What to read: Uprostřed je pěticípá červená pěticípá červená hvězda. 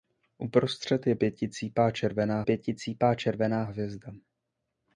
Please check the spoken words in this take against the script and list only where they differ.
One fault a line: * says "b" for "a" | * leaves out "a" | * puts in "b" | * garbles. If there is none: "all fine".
all fine